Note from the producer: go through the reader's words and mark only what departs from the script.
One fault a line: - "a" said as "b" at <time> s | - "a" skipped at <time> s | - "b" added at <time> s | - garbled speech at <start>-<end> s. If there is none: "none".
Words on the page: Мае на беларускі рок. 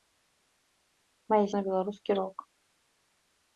none